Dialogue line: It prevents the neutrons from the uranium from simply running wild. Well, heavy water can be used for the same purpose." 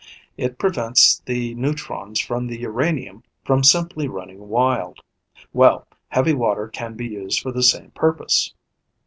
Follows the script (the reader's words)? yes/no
yes